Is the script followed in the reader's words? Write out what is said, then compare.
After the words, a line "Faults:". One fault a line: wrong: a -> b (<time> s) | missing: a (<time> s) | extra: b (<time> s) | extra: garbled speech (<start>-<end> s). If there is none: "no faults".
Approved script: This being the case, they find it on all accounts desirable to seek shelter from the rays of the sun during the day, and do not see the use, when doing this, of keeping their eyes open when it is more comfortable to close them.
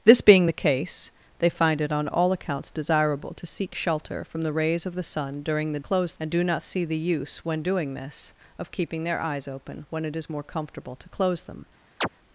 This being the case, they find it on all accounts desirable to seek shelter from the rays of the sun during the close, and do not see the use, when doing this, of keeping their eyes open when it is more comfortable to close them.
Faults:
wrong: day -> close (5.8 s)